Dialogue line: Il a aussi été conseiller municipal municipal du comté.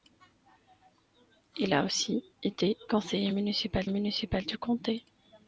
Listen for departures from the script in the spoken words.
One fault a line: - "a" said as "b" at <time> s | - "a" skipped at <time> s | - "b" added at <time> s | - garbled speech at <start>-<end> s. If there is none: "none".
none